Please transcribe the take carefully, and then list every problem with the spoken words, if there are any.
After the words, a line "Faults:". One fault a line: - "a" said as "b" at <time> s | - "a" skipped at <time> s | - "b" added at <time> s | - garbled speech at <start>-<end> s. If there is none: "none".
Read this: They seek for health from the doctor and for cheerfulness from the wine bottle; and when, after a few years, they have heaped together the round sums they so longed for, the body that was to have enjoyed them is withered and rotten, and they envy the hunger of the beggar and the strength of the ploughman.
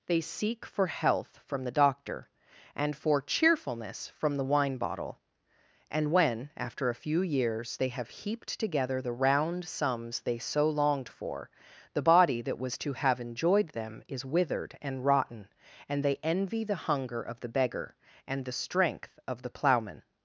They seek for health from the doctor and for cheerfulness from the wine bottle; and when, after a few years, they have heaped together the round sums they so longed for, the body that was to have enjoyed them is withered and rotten, and they envy the hunger of the beggar and the strength of the ploughman.
Faults:
none